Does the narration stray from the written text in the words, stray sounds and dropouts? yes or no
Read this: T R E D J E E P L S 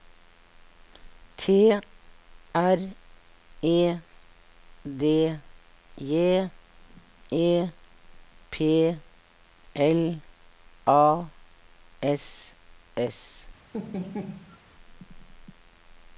yes